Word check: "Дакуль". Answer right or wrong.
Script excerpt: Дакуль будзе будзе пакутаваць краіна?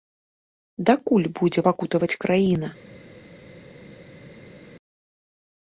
right